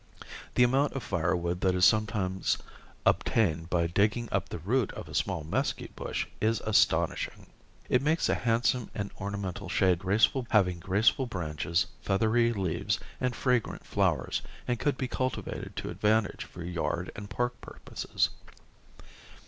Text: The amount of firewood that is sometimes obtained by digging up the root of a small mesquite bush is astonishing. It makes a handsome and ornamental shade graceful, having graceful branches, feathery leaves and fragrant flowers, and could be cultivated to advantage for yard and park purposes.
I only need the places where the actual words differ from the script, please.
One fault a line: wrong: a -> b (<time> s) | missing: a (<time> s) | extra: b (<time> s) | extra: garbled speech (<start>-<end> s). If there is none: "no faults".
no faults